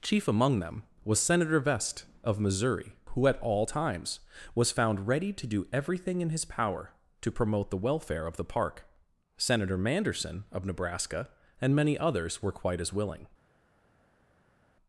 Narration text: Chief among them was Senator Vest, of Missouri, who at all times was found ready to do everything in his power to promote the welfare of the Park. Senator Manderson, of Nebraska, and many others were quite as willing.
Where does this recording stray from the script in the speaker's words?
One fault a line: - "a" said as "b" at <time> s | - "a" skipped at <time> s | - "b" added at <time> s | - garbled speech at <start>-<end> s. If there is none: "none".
none